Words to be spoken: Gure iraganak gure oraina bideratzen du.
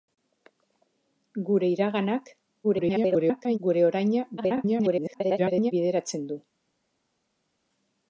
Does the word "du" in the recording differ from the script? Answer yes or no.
no